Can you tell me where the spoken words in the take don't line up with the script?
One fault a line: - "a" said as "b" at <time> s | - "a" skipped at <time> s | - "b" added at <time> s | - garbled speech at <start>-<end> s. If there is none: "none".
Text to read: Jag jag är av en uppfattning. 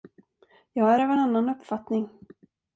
- "jag" skipped at 0.9 s
- "annan" added at 1.2 s